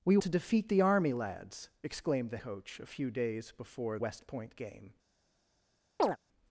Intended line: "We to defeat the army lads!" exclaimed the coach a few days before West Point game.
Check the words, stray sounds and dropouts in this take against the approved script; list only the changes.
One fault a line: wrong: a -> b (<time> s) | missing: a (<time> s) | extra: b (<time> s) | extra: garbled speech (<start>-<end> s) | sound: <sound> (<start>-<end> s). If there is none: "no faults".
sound: chirp (6.0-6.2 s)